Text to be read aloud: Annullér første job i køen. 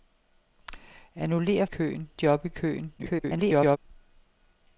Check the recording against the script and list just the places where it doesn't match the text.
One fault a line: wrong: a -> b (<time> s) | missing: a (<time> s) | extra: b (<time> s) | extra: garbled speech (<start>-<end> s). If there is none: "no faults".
wrong: første -> køen (1.6 s)
extra: garbled speech (3.0-3.8 s)